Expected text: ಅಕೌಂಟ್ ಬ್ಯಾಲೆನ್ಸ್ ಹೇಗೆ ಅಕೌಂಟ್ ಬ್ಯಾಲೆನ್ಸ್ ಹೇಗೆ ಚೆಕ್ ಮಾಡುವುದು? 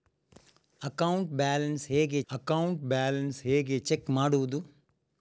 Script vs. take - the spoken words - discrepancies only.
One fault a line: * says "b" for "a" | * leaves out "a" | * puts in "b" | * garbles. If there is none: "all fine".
all fine